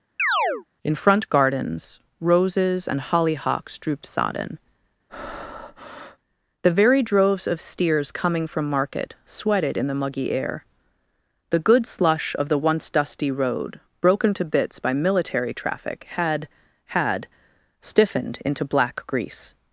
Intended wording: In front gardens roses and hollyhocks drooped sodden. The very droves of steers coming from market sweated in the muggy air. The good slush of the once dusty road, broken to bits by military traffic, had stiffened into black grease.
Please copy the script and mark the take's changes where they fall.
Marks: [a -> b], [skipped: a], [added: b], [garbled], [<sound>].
[chirp] In front gardens roses and hollyhocks drooped sodden. [breath] The very droves of steers coming from market sweated in the muggy air. The good slush of the once dusty road, broken to bits by military traffic, had [added: had] stiffened into black grease.